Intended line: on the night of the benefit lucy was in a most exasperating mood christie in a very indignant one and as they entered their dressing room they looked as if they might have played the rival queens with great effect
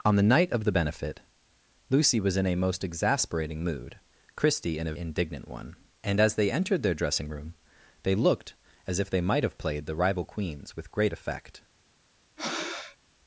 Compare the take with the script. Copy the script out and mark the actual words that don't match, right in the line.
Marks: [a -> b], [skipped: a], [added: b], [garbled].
on the night of the benefit lucy was in a most exasperating mood christie in a [skipped: very] indignant one and as they entered their dressing room they looked as if they might have played the rival queens with great effect